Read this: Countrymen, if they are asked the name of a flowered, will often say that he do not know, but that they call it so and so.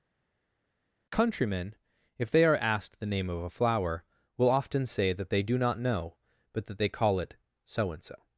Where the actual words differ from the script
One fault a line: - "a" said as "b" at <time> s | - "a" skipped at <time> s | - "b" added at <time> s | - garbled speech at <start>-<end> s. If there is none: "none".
- "flowered" said as "flower" at 3.5 s
- "he" said as "they" at 5.3 s